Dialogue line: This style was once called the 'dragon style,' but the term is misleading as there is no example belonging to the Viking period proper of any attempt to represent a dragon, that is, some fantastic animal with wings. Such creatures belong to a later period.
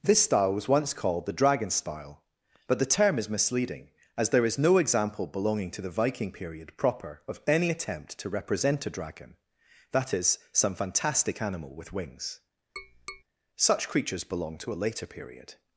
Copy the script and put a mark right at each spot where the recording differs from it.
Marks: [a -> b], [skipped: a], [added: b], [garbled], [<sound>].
This style was once called the 'dragon style,' but the term is misleading as there is no example belonging to the Viking period proper of any attempt to represent a dragon, that is, some fantastic animal with wings. [tap] Such creatures belong to a later period.